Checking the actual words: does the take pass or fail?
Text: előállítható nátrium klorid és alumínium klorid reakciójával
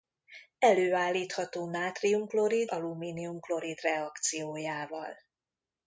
fail